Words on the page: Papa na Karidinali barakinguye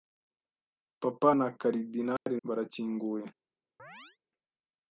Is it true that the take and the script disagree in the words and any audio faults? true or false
true